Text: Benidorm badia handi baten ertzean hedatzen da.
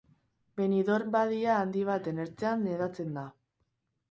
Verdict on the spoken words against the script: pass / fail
pass